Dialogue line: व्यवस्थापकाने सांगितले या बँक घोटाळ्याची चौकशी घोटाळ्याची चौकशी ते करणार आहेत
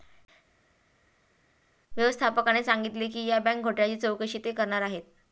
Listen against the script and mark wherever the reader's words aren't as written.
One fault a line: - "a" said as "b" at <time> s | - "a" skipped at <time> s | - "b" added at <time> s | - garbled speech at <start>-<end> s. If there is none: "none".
- "की" added at 3.1 s
- "घोटाळ्याची चौकशी" skipped at 4.4 s